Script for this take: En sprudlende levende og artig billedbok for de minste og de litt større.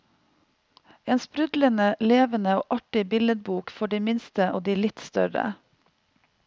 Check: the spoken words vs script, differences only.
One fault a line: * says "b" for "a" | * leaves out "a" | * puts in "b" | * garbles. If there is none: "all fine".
all fine